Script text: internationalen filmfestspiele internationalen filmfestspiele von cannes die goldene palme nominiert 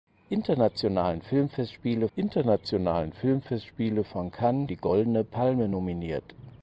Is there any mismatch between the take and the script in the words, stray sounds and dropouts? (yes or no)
no